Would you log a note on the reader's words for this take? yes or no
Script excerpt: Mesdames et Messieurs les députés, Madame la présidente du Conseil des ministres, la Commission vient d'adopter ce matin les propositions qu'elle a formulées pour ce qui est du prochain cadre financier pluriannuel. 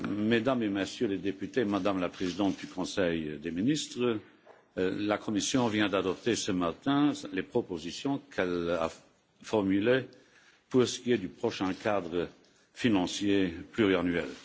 no